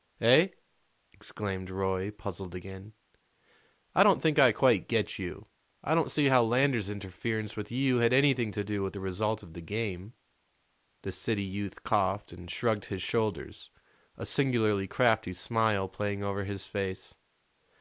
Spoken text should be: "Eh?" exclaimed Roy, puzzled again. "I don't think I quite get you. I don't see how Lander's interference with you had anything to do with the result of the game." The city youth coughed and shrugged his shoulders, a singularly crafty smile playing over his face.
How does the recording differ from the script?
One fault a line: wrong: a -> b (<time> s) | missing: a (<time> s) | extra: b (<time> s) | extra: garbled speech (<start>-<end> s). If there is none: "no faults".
no faults